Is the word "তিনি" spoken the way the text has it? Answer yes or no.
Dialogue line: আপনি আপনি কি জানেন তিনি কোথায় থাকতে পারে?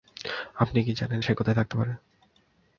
no